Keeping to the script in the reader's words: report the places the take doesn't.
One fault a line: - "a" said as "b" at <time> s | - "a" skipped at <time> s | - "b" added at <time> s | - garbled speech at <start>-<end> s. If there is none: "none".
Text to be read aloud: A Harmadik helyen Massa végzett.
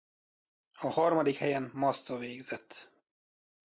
none